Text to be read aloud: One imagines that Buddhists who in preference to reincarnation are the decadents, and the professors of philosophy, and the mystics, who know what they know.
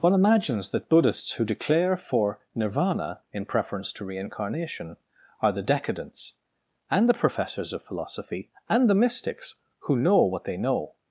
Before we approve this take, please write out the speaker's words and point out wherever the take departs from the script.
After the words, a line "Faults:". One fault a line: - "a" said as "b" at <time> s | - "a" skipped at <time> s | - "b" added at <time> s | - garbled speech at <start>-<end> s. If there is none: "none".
One imagines that Buddhists who declare for Nirvana in preference to reincarnation are the decadents, and the professors of philosophy, and the mystics, who know what they know.
Faults:
- "declare for Nirvana" added at 1.4 s